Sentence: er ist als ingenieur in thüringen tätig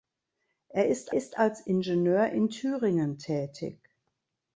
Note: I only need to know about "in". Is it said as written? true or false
true